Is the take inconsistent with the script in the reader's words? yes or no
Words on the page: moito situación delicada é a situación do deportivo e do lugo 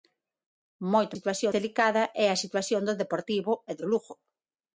no